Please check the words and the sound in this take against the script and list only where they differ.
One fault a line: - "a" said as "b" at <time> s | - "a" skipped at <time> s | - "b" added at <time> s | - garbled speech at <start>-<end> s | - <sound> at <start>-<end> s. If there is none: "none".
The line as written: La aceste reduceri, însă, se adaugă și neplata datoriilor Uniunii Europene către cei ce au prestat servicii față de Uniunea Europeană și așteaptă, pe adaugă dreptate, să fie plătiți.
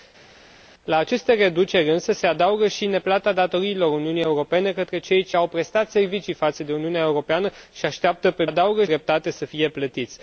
none